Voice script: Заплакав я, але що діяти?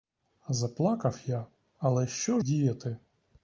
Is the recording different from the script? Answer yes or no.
no